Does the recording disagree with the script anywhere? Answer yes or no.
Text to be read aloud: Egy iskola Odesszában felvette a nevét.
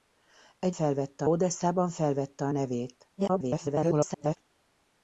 yes